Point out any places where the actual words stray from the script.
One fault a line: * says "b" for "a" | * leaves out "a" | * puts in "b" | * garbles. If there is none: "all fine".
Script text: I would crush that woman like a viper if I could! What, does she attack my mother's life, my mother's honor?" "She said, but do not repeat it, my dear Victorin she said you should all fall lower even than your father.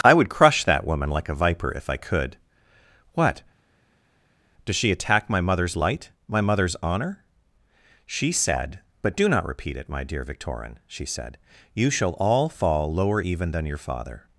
* says "light" for "life"
* says "shall" for "should"